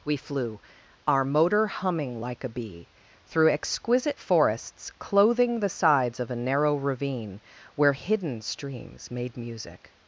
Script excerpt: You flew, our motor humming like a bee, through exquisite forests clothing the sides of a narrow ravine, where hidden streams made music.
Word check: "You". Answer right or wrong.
wrong